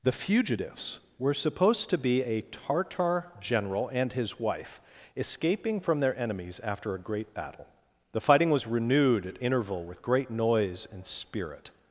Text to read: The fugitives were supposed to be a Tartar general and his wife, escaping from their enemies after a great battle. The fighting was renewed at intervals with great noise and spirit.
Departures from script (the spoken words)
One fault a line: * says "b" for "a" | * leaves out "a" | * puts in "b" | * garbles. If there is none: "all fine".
* says "interval" for "intervals"